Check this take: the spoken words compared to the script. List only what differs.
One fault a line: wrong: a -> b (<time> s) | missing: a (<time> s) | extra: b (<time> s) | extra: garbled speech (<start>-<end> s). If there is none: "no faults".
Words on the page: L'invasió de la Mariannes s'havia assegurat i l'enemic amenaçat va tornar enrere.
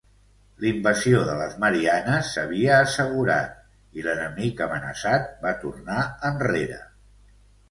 wrong: la -> les (1.4 s)